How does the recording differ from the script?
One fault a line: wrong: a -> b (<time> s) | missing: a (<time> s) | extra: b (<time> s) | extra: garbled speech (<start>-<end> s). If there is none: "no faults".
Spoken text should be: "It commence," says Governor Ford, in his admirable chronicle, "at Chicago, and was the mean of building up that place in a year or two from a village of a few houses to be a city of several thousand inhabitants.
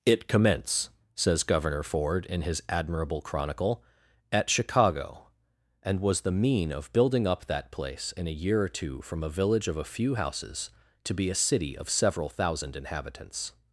no faults